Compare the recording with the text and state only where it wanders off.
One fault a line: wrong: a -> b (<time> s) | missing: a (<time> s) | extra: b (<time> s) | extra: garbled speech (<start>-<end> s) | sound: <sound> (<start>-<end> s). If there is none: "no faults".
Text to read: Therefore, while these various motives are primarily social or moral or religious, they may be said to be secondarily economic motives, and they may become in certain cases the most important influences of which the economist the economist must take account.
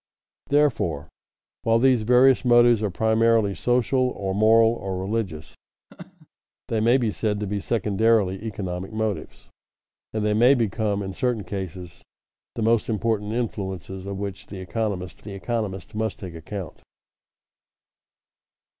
sound: laugh (5.9-6.3 s)